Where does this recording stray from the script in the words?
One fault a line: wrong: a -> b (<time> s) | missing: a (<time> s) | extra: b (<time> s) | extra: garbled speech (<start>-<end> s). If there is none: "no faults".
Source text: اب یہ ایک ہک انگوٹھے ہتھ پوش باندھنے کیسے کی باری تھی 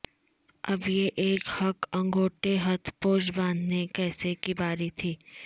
no faults